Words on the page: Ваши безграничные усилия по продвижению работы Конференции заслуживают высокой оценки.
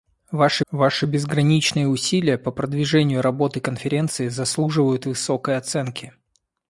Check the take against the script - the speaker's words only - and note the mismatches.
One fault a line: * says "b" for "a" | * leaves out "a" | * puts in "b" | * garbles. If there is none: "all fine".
* puts in "ваши"